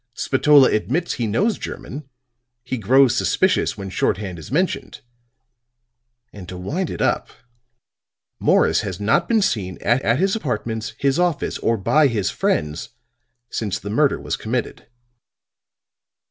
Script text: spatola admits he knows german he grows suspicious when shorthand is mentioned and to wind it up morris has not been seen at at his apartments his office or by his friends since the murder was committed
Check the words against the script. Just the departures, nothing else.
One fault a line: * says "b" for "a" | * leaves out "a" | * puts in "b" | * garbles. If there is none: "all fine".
all fine